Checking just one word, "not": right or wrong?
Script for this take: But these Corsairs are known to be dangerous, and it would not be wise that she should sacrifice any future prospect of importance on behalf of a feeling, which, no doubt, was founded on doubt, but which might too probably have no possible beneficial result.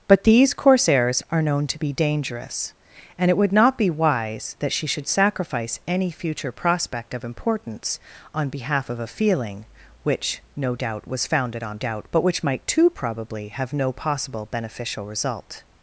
right